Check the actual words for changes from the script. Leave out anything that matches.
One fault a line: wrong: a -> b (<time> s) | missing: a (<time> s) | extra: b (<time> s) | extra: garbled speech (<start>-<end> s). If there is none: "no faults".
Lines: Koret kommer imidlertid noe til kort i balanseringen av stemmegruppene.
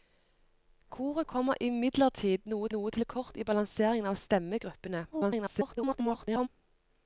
extra: noe (2.8 s)
extra: garbled speech (5.1-6.5 s)